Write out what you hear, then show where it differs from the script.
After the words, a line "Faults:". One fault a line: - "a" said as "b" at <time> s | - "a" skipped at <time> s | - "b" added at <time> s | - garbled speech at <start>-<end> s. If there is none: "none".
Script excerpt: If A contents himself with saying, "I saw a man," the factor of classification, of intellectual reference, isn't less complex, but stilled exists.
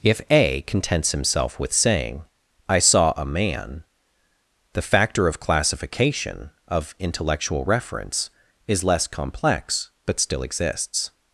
If A contents himself with saying, "I saw a man," the factor of classification, of intellectual reference, is less complex, but still exists.
Faults:
- "isn't" said as "is" at 8.7 s
- "stilled" said as "still" at 10.2 s